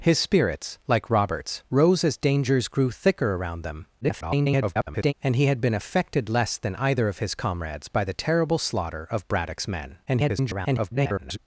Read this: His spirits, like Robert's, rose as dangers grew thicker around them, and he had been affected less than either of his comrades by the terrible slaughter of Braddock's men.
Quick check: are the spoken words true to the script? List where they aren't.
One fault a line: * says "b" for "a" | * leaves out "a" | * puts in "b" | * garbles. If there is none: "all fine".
* garbles
* garbles